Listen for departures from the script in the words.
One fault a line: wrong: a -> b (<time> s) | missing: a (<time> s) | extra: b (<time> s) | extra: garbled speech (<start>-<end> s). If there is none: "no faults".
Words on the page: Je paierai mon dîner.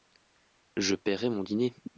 no faults